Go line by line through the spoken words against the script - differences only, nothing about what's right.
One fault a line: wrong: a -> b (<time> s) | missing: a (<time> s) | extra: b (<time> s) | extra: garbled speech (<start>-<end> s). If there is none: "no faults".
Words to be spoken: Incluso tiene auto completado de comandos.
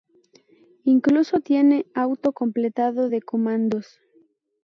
no faults